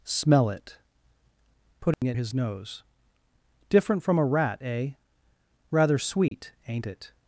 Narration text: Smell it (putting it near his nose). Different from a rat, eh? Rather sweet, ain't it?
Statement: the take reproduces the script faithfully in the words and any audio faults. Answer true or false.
false